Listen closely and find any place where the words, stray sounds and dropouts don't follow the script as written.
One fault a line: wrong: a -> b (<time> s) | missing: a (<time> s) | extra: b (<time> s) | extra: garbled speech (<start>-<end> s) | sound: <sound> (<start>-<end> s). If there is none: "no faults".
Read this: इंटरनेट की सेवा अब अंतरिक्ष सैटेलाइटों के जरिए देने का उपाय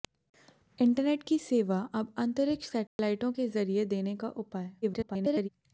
sound: dropout (2.9-3.0 s)
extra: garbled speech (4.8-5.5 s)